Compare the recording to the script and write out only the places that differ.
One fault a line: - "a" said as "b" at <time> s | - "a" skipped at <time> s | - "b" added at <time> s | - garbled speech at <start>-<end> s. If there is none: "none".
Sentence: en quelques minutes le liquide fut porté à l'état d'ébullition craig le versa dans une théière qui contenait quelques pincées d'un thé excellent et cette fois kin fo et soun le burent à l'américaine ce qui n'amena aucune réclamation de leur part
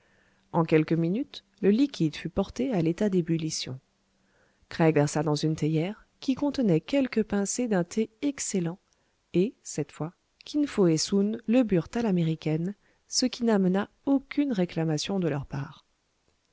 - "le" skipped at 5.0 s